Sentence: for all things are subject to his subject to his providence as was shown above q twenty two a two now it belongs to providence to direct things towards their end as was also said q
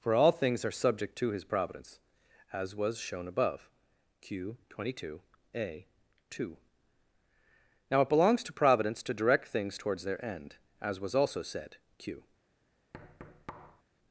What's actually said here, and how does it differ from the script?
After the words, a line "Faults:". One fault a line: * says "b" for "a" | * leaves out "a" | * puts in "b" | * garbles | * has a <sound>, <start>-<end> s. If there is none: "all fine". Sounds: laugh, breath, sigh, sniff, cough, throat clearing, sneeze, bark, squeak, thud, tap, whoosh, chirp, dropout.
for all things are subject to his providence as was shown above q twenty two a two now it belongs to providence to direct things towards their end as was also said q
Faults:
* leaves out "subject to his"
* has a thud, 12.9-13.8 s